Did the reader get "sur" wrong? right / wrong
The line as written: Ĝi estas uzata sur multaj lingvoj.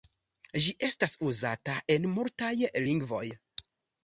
wrong